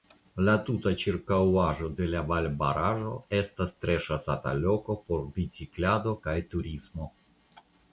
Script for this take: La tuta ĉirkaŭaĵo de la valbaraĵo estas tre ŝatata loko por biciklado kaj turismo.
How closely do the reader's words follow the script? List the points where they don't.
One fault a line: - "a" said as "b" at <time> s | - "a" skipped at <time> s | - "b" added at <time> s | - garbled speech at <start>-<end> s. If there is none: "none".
none